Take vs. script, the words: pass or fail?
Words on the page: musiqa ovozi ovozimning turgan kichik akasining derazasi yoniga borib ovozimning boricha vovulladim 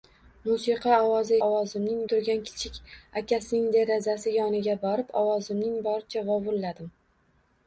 pass